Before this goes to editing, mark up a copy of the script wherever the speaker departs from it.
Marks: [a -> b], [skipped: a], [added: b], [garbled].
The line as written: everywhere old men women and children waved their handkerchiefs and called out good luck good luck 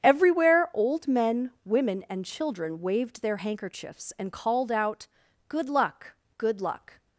everywhere old men women and children waved their handkerchiefs and called out good luck good luck